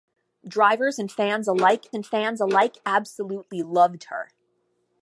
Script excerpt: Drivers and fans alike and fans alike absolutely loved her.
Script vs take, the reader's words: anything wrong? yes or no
no